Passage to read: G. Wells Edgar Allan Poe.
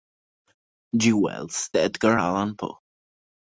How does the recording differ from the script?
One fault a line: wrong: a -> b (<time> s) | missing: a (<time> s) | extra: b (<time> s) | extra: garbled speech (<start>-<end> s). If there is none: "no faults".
no faults